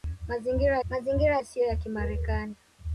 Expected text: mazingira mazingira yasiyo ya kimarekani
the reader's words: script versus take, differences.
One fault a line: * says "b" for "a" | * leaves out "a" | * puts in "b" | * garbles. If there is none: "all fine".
all fine